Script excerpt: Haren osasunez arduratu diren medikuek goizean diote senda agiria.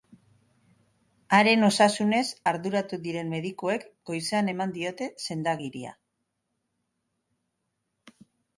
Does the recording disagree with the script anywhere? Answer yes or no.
yes